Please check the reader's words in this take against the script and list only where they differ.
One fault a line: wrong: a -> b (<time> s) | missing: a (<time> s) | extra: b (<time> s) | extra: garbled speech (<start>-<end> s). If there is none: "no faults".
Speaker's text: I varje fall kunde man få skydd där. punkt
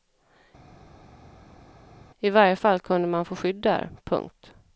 no faults